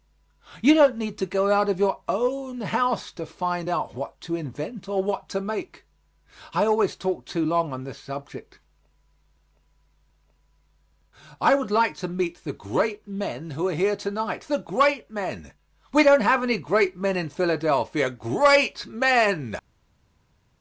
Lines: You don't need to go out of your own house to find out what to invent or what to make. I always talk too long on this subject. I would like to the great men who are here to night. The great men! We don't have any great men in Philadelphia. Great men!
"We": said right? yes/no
yes